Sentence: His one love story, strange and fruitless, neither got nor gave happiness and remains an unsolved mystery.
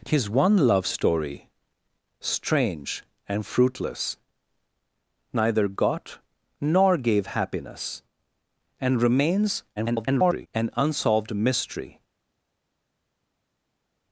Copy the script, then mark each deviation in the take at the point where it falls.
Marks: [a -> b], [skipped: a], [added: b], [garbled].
His one love story, strange and fruitless, neither got nor gave happiness and remains [garbled] an unsolved mystery.